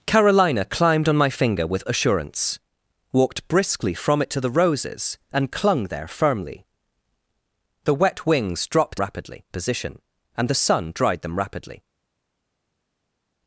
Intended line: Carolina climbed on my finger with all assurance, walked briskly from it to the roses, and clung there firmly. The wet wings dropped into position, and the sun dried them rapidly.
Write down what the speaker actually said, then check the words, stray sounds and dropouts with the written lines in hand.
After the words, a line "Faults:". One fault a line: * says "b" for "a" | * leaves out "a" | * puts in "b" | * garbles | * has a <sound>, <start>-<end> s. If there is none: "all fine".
Carolina climbed on my finger with assurance, walked briskly from it to the roses, and clung there firmly. The wet wings dropped rapidly position, and the sun dried them rapidly.
Faults:
* leaves out "all"
* says "rapidly" for "into"